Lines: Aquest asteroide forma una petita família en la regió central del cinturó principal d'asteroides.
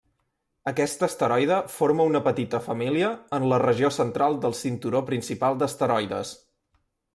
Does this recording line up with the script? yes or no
yes